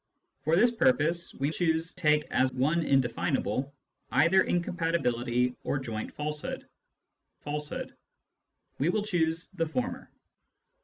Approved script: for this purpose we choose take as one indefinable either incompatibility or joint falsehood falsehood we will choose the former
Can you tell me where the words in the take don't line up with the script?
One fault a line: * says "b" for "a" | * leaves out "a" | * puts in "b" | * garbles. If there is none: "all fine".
all fine